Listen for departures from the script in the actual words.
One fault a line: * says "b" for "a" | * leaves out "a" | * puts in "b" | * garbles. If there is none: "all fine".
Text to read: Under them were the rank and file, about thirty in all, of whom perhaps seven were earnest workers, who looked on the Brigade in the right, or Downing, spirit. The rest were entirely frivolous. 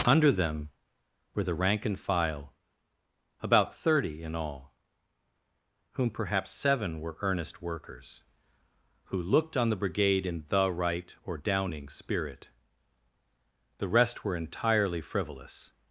* leaves out "of"